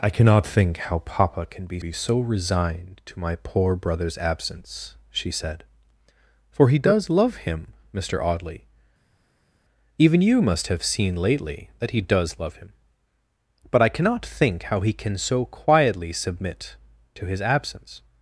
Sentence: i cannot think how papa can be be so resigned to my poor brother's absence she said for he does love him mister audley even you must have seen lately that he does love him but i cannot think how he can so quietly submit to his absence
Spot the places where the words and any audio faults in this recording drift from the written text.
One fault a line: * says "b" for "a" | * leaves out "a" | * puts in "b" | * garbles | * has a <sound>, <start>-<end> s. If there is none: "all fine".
all fine